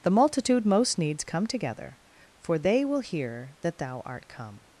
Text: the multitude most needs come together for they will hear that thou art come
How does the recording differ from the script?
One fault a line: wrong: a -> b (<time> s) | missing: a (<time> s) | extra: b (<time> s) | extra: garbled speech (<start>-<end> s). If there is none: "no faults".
no faults